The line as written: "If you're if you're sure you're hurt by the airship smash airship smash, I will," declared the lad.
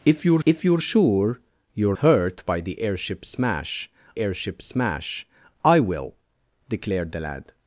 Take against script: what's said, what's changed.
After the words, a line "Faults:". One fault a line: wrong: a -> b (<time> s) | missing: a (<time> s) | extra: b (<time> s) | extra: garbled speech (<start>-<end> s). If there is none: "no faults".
"If you're if you're sure you're hurt by the airship smash airship smash, I will," declared the lad.
Faults:
no faults